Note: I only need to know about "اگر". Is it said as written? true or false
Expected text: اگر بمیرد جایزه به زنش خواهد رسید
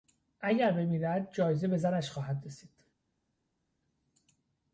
true